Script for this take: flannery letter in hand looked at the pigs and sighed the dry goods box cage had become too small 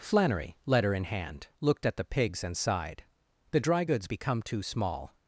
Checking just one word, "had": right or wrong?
wrong